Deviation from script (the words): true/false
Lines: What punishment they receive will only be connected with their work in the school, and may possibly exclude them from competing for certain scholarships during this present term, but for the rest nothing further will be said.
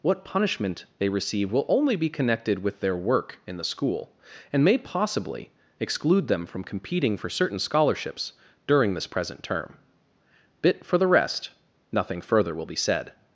true